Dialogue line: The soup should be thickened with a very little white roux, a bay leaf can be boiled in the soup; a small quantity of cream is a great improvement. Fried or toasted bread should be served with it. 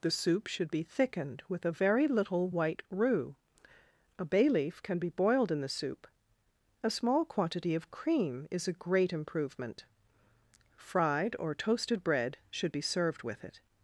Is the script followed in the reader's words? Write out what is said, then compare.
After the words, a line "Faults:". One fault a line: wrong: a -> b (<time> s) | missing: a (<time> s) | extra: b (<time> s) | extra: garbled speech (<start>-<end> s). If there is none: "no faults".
The soup should be thickened with a very little white roux, a bay leaf can be boiled in the soup; a small quantity of cream is a great improvement. Fried or toasted bread should be served with it.
Faults:
no faults